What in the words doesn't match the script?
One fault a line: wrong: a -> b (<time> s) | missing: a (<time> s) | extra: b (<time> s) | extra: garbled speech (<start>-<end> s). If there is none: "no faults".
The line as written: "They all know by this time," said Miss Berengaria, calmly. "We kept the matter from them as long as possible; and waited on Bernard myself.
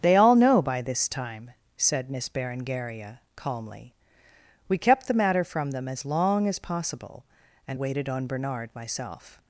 no faults